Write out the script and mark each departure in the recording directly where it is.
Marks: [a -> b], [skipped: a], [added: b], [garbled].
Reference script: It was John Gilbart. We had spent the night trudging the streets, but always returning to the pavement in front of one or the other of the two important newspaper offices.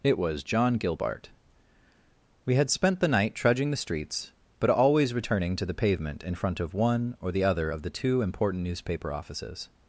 It was John Gilbart. We had spent the night trudging the streets, but always returning to the pavement in front of one or the other of the two important newspaper offices.